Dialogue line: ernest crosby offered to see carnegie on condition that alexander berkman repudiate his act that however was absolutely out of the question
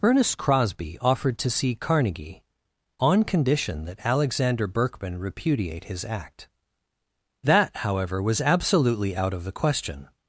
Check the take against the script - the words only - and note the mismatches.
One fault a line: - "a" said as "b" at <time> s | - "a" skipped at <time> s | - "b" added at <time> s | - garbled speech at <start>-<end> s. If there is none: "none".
none